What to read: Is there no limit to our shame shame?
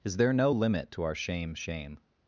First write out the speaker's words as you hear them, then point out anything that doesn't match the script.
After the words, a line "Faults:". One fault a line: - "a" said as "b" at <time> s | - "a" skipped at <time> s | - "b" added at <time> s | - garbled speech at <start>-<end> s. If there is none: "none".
Is there no limit to our shame shame?
Faults:
none